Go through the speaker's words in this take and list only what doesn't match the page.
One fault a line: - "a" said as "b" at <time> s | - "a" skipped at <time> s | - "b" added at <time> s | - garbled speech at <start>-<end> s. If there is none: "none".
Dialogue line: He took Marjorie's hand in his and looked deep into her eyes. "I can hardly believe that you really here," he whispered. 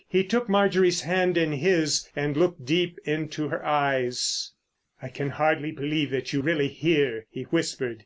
none